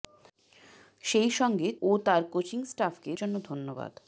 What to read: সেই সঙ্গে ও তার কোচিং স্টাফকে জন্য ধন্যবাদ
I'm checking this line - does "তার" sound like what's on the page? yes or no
yes